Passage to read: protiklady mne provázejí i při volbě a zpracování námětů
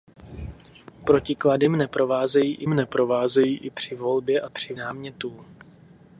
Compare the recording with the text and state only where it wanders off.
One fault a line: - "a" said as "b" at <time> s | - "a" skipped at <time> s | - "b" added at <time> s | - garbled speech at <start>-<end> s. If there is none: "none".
- "mne provázejí i" added at 2.7 s
- "zpracování" said as "při" at 4.5 s